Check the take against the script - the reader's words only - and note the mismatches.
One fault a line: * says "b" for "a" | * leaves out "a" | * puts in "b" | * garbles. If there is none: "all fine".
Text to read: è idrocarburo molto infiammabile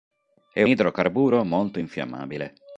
all fine